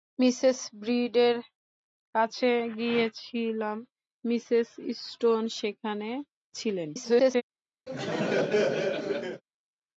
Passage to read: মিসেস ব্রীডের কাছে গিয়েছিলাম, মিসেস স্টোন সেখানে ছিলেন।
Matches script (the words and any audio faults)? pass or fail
fail